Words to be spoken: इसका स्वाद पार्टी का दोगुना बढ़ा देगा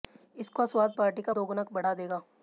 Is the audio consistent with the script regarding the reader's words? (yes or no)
yes